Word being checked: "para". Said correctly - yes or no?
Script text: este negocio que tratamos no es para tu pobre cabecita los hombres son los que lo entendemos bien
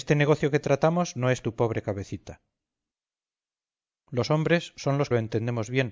no